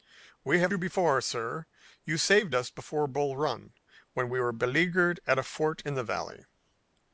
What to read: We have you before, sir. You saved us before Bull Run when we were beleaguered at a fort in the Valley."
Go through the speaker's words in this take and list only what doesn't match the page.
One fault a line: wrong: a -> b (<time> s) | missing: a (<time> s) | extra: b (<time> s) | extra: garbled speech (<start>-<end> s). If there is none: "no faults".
no faults